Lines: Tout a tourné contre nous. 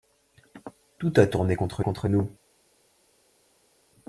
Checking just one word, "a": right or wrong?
right